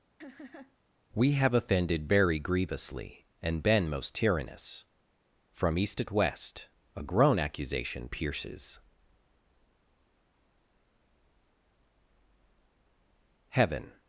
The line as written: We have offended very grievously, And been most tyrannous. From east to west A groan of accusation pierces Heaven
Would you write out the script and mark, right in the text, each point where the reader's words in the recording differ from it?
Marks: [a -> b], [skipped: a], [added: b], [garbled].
We have offended very grievously, And been most tyrannous. From east [to -> at] west A groan [skipped: of] accusation pierces Heaven